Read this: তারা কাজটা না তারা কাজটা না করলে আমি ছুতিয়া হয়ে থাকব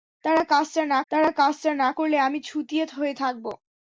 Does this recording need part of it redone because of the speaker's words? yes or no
no